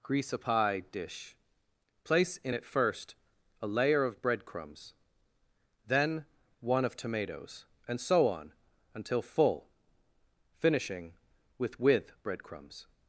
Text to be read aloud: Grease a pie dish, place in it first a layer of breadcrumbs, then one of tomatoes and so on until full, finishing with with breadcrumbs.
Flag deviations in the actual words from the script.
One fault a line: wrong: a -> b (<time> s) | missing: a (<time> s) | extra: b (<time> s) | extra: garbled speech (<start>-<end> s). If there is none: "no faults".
no faults